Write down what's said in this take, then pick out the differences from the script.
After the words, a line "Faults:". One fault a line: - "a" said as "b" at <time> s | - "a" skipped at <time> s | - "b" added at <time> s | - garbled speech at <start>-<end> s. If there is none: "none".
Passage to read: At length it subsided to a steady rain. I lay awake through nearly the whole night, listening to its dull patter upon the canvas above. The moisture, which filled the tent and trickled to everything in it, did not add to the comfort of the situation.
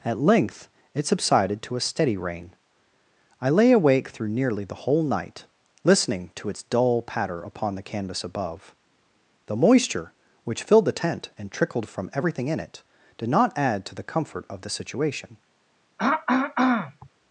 At length it subsided to a steady rain. I lay awake through nearly the whole night, listening to its dull patter upon the canvas above. The moisture, which filled the tent and trickled from everything in it, did not add to the comfort of the situation.
Faults:
- "to" said as "from" at 11.9 s